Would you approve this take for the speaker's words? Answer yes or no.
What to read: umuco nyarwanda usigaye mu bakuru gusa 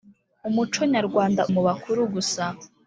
no